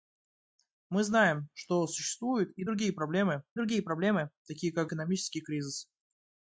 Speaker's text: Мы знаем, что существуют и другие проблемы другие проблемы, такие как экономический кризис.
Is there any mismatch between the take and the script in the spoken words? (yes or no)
no